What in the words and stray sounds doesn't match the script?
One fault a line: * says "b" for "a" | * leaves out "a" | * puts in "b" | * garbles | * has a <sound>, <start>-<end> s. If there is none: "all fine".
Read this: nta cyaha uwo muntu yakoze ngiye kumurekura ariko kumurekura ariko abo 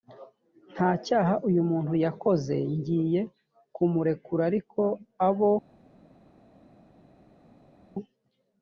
* says "uyu" for "uwo"
* leaves out "kumurekura ariko"